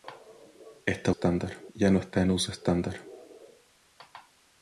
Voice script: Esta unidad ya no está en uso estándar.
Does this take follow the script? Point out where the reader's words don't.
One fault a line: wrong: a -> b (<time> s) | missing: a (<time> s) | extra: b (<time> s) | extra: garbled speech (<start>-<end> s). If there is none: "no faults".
wrong: unidad -> estándar (1.1 s)